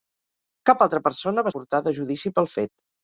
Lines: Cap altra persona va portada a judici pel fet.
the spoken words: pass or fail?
pass